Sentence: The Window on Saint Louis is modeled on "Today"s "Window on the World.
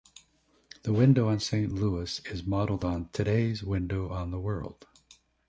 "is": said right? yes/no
yes